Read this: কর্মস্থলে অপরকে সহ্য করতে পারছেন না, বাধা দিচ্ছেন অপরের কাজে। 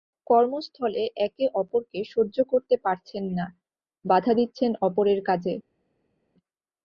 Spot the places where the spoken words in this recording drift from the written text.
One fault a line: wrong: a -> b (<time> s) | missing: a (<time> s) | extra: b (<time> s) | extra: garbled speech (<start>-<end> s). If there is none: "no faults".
extra: একে (1.2 s)